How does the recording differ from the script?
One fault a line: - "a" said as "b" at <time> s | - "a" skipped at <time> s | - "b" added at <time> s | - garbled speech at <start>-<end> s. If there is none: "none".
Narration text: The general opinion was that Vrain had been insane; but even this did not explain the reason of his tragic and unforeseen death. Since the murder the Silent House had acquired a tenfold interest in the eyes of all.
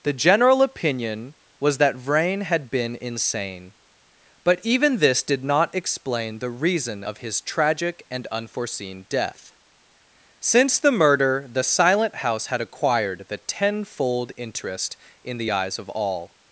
- "a" said as "the" at 13.3 s